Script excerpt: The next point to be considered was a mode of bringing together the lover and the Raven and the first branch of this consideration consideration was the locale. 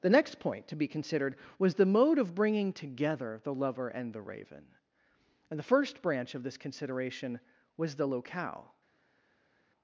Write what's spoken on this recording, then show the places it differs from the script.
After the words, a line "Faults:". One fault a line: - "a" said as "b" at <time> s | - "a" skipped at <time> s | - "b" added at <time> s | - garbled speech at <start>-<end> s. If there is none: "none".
The next point to be considered was the mode of bringing together the lover and the Raven and the first branch of this consideration was the locale.
Faults:
- "a" said as "the" at 1.8 s
- "consideration" skipped at 7.4 s